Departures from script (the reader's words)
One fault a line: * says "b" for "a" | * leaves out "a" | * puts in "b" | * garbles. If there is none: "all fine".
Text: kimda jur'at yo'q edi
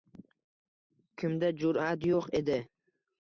all fine